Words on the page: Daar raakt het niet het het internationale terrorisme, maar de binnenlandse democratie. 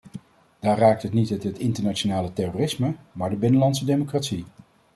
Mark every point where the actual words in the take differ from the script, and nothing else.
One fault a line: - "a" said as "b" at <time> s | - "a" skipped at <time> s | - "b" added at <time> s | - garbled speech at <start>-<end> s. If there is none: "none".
none